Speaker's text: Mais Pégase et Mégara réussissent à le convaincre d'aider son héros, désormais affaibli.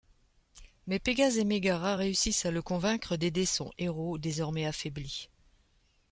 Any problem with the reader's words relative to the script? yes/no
no